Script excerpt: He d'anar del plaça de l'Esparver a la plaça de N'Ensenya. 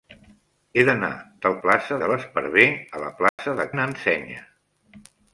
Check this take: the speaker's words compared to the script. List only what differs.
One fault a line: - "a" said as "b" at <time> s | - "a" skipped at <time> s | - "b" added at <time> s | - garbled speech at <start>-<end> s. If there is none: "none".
none